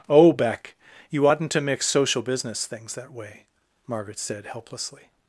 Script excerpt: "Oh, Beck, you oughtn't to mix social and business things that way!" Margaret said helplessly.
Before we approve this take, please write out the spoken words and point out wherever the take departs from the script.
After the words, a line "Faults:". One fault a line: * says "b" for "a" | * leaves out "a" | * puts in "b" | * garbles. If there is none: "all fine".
"Oh, Beck, you oughtn't to mix social business things that way!" Margaret said helplessly.
Faults:
* leaves out "and"